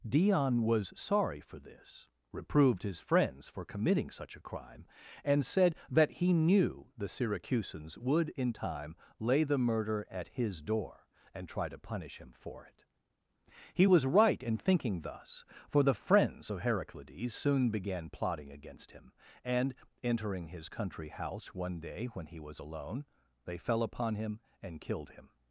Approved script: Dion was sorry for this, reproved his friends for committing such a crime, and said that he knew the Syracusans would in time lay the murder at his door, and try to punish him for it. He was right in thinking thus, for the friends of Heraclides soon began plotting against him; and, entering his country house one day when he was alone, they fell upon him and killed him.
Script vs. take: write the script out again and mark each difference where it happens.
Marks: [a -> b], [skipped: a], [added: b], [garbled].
Dion was sorry for this, reproved his friends for committing such a crime, and said that he knew the Syracusans would in time lay the murder at his door, and try to punish him for it. He was right in thinking thus, for the friends of Heraclides soon began plotting against him; and, entering his country house one day when he was alone, they fell upon him and killed him.